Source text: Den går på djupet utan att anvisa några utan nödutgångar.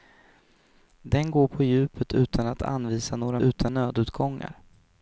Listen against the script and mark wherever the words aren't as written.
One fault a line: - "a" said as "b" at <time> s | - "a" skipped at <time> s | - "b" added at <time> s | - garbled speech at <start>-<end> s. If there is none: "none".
none